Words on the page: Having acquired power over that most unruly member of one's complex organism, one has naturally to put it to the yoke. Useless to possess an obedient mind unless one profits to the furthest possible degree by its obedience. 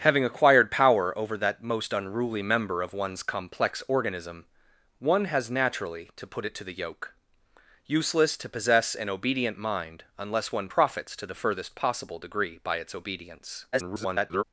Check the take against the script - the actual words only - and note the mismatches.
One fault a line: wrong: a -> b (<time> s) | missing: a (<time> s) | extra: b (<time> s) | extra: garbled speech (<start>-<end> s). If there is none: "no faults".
extra: garbled speech (13.7-14.4 s)